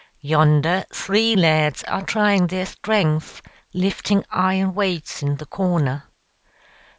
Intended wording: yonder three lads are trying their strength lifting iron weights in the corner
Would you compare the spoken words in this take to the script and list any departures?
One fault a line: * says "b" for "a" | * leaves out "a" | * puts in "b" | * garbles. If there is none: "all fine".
all fine